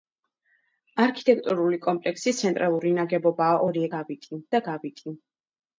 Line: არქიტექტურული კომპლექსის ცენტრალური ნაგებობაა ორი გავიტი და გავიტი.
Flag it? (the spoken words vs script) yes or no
no